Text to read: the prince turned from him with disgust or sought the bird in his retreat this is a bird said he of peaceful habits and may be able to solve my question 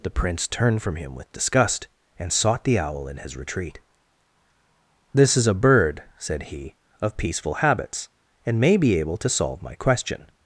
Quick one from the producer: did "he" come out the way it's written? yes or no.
yes